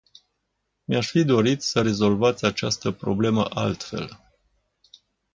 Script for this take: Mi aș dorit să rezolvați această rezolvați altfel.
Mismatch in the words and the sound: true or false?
true